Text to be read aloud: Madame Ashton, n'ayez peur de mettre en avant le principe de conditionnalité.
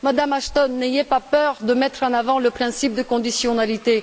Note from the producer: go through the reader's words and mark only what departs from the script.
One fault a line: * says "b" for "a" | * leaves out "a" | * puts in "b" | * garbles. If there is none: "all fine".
* puts in "pas"